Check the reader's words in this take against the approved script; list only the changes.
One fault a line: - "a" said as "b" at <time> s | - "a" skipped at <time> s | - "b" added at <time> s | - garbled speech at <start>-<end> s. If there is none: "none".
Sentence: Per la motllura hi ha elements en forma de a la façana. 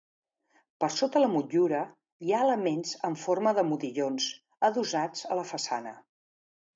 - "sota" added at 0.9 s
- "modillons adossats" added at 3.7 s